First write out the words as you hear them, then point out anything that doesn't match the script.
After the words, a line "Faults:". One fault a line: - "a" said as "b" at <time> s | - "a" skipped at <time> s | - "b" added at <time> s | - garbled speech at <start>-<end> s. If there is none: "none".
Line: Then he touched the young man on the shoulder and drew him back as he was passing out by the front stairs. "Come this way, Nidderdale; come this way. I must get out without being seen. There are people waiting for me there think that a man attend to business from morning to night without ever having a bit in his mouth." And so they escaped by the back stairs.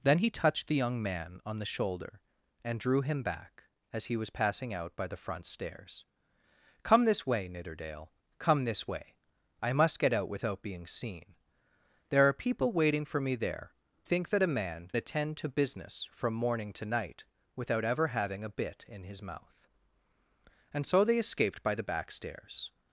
Then he touched the young man on the shoulder and drew him back as he was passing out by the front stairs. "Come this way, Nidderdale; come this way. I must get out without being seen. There are people waiting for me there think that a man attend to business from morning to night without ever having a bit in his mouth." And so they escaped by the back stairs.
Faults:
none